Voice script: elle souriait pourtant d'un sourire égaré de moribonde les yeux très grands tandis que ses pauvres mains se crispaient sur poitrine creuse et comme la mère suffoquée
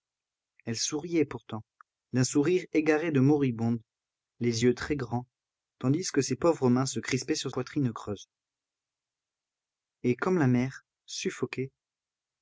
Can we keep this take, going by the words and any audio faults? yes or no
yes